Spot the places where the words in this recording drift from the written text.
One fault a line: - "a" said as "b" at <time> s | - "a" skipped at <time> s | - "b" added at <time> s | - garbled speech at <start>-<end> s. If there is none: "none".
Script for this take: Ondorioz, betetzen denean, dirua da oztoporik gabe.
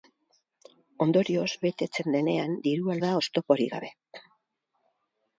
none